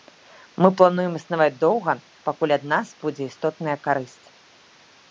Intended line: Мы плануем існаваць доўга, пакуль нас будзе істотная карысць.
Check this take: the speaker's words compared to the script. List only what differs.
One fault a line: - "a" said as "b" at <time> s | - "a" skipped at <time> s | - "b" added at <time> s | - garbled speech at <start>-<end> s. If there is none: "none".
- "ад" added at 2.6 s